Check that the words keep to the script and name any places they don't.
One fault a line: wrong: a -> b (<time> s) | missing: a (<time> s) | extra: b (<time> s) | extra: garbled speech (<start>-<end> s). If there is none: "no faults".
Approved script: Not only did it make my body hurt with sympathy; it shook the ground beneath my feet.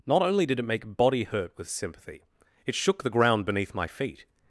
missing: my (1.0 s)